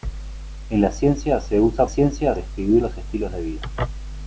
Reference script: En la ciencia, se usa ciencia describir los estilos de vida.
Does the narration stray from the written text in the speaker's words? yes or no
no